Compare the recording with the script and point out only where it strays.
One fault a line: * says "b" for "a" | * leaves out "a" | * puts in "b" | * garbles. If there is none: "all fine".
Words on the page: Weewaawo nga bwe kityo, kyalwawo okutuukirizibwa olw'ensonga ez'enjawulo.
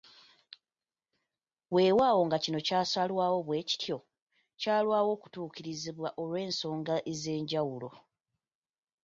* puts in "kino kyasalwawo"